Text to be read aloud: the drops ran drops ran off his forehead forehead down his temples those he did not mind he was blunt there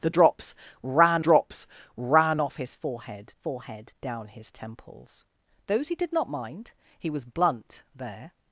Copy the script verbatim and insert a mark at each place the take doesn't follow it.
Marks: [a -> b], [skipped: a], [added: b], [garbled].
the drops ran drops ran off his forehead forehead down his temples those he did not mind he was blunt there